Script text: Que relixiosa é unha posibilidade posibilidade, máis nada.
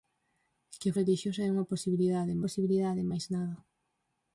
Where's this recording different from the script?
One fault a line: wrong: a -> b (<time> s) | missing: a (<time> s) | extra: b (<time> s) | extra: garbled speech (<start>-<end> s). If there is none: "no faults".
no faults